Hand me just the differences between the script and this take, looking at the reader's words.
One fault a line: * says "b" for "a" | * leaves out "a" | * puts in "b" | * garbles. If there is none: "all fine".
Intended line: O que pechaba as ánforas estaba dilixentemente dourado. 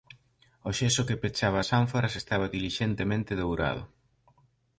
* puts in "xeso"